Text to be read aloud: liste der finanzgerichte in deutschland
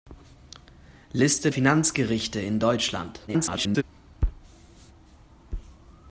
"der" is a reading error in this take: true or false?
true